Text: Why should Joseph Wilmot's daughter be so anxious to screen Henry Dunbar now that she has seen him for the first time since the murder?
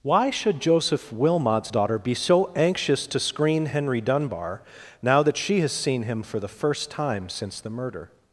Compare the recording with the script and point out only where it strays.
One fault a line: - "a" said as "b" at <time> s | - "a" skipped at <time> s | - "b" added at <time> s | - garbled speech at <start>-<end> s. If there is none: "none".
none